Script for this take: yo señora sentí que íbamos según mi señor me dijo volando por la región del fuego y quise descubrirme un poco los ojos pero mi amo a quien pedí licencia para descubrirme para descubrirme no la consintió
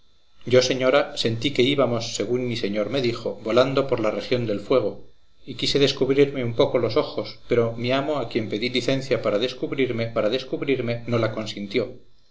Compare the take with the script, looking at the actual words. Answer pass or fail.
pass